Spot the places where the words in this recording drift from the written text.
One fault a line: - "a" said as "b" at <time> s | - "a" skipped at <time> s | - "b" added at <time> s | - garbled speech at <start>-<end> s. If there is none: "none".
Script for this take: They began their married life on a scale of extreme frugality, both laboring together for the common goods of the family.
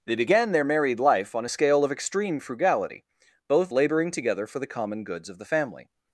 none